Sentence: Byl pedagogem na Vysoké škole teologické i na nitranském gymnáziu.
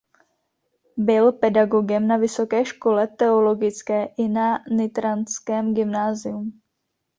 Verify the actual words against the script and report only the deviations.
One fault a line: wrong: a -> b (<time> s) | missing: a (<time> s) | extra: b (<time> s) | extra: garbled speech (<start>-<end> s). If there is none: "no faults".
no faults